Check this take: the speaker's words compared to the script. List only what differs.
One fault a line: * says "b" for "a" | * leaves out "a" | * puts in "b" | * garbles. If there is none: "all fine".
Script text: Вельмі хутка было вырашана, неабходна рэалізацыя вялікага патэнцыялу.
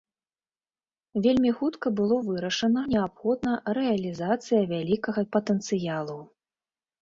all fine